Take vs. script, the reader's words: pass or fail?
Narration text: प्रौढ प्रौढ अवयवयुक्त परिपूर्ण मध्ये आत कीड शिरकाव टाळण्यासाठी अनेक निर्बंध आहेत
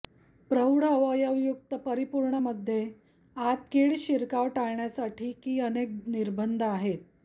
fail